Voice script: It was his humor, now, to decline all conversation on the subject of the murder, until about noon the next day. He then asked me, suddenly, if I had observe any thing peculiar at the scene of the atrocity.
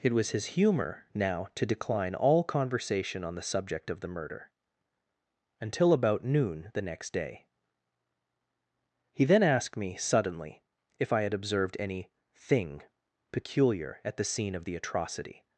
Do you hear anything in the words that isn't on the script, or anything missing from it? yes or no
yes